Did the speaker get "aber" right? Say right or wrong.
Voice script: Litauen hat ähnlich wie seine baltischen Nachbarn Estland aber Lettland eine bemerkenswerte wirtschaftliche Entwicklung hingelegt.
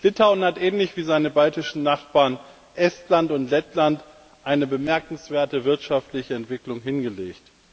wrong